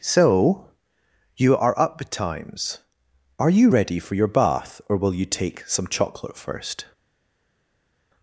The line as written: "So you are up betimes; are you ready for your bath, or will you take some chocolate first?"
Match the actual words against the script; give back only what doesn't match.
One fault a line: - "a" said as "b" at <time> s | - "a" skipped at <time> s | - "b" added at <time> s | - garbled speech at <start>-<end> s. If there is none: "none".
none